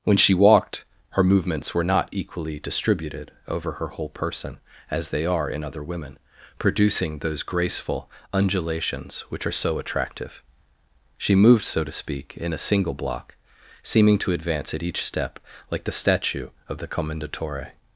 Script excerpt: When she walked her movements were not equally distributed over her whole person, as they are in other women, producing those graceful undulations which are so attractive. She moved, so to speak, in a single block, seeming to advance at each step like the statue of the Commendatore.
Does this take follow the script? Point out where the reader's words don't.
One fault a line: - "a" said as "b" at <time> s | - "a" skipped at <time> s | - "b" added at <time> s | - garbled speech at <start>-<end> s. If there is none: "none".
none